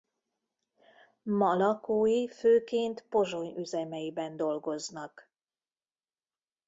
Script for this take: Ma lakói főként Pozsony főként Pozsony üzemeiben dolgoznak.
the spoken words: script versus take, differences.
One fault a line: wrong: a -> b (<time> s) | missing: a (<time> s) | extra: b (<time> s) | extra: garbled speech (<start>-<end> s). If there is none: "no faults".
missing: főként Pozsony (3.5 s)